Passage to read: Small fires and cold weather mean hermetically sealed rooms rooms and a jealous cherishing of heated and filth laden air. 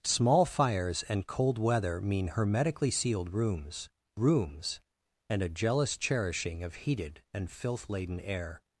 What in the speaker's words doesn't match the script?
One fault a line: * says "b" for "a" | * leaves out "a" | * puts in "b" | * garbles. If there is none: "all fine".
all fine